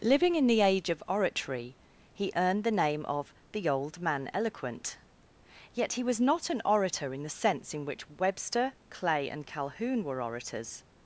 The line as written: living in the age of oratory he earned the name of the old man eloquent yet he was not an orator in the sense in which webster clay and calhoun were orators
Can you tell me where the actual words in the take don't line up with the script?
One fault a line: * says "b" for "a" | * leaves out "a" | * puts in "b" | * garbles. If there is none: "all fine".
all fine